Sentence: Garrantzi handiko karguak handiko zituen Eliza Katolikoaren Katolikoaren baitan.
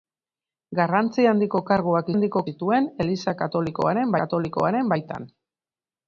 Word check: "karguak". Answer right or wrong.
right